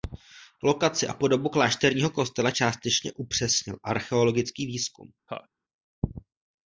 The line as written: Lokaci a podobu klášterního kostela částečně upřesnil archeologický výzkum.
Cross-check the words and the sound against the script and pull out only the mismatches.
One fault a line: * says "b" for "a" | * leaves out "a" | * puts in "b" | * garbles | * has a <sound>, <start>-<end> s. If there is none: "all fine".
* has a laugh, 5.3-5.5 s